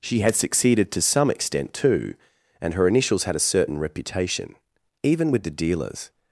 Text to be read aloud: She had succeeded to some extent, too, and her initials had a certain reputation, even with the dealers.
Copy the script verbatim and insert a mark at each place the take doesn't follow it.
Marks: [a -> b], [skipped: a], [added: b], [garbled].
She had succeeded to some extent, too, and her initials had a certain reputation, even with the dealers.